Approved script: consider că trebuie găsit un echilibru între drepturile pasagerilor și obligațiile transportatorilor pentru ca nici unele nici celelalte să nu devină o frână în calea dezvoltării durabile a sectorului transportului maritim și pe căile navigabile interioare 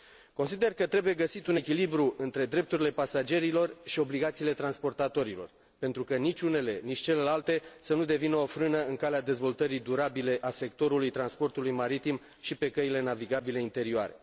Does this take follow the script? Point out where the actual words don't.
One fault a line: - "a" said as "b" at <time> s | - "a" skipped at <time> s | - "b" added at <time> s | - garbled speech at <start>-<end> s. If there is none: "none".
none